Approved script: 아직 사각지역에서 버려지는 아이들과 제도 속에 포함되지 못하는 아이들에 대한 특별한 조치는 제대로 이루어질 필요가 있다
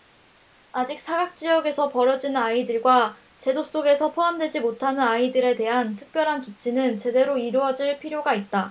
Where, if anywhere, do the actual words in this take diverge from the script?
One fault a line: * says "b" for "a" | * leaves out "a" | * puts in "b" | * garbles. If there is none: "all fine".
all fine